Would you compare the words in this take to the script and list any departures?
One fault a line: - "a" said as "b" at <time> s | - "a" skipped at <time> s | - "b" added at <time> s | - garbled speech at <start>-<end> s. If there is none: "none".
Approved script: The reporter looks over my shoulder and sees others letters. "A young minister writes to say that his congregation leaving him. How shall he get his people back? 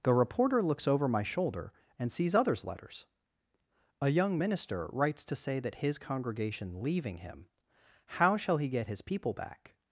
none